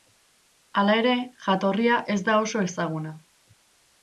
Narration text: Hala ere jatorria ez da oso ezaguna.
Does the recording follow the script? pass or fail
pass